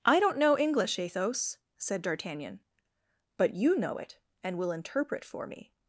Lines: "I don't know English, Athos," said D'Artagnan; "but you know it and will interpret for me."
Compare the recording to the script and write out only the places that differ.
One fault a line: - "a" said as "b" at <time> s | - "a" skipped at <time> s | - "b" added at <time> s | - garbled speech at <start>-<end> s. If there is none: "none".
none